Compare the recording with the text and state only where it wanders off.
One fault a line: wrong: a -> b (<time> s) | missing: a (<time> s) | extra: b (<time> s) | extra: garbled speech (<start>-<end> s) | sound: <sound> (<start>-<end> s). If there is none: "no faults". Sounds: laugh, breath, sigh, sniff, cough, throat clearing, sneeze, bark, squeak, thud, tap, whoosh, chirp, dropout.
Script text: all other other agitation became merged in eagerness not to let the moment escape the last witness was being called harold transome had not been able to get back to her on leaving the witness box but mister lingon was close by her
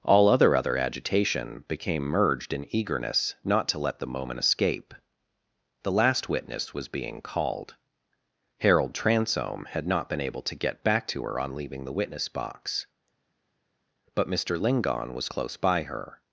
no faults